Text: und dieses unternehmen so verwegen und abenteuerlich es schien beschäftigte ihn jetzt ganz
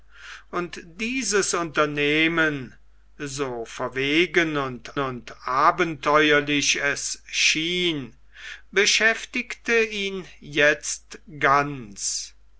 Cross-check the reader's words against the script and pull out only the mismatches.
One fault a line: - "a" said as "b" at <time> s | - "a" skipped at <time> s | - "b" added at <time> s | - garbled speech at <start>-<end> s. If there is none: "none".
- "und" added at 5.0 s